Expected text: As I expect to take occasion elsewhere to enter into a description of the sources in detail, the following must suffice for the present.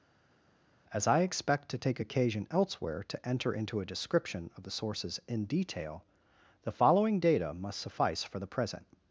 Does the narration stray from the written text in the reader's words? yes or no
yes